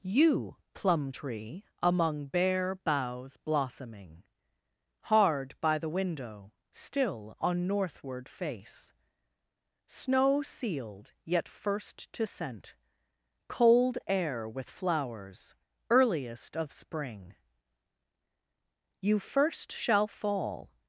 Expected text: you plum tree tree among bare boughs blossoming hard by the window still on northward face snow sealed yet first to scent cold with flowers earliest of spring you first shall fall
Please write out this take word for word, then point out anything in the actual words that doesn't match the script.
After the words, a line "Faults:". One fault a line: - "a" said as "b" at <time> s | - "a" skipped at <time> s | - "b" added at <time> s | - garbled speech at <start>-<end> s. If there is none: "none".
you plum tree among bare boughs blossoming hard by the window still on northward face snow sealed yet first to scent cold air with flowers earliest of spring you first shall fall
Faults:
- "tree" skipped at 1.6 s
- "air" added at 14.1 s